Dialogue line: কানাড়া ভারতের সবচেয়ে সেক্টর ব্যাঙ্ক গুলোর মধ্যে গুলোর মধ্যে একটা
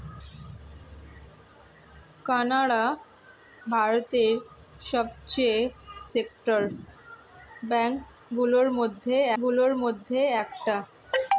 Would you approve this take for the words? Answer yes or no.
yes